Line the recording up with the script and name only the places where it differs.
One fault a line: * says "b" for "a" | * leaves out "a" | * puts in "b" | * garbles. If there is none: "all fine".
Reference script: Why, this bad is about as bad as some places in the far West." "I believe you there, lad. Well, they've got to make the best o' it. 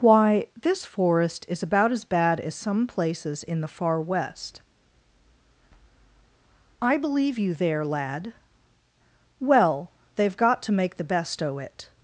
* says "forest" for "bad"